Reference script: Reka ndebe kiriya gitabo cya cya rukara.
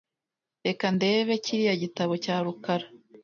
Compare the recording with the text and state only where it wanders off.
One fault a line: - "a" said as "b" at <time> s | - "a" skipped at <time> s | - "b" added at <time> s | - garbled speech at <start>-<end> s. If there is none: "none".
- "cya" skipped at 2.4 s